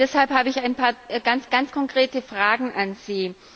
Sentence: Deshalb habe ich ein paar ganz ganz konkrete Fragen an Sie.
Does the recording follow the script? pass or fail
pass